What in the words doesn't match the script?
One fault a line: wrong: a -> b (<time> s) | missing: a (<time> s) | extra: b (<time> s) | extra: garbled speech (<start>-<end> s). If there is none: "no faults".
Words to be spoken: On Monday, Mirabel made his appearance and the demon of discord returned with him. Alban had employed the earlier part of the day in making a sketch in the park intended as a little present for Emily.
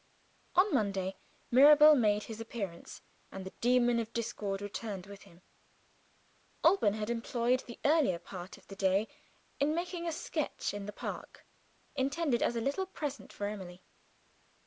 no faults